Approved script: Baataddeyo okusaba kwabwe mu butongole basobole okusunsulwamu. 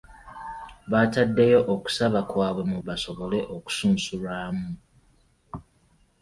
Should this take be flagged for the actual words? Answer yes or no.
yes